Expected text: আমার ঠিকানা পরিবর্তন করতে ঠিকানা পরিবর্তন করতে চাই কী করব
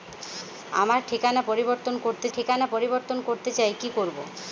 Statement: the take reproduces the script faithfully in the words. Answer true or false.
true